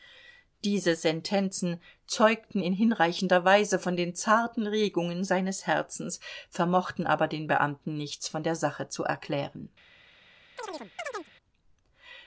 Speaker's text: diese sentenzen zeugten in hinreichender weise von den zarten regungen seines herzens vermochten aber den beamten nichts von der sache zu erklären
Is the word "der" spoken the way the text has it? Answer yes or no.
yes